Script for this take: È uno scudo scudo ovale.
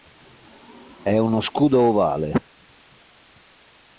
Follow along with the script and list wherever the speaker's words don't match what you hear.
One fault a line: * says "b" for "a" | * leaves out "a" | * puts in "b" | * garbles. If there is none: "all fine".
* leaves out "scudo"